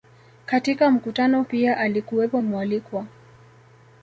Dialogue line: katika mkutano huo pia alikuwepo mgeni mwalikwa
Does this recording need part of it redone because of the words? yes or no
yes